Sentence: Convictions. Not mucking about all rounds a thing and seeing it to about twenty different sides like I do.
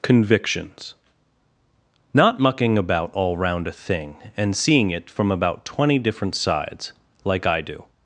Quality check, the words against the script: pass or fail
fail